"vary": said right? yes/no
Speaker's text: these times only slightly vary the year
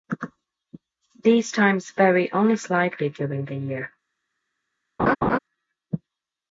no